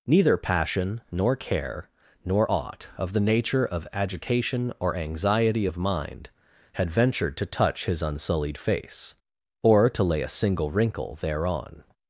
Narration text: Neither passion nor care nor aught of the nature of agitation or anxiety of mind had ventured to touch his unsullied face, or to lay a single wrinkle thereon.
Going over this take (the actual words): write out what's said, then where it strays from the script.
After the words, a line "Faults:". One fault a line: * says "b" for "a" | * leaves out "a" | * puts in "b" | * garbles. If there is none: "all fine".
Neither passion nor care nor aught of the nature of agitation or anxiety of mind had ventured to touch his unsullied face, or to lay a single wrinkle thereon.
Faults:
all fine